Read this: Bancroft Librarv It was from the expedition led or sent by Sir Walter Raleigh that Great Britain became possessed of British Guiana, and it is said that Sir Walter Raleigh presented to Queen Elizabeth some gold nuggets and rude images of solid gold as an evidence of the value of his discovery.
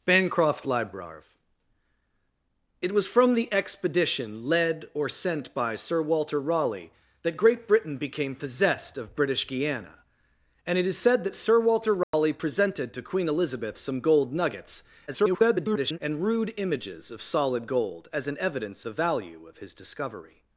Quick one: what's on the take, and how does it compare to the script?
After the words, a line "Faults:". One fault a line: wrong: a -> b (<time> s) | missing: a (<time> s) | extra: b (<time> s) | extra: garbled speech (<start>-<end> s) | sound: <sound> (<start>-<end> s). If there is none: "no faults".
Bancroft Librarv It was from the expedition led or sent by Sir Walter Raleigh that Great Britain became possessed of British Guiana, and it is said that Sir Walter Raleigh presented to Queen Elizabeth some gold nuggets [garbled] and rude images of solid gold as an evidence the value of his discovery.
Faults:
sound: dropout (12.0-12.1 s)
extra: garbled speech (15.1-16.0 s)
missing: of (18.8 s)